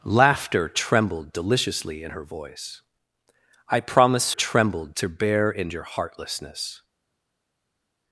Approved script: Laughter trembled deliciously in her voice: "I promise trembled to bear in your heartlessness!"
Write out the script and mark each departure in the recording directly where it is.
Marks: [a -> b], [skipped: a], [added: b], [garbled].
Laughter trembled deliciously in her voice: "I promise trembled to bear in your heartlessness!"